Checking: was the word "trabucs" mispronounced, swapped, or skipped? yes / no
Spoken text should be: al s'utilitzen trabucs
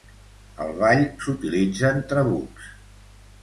no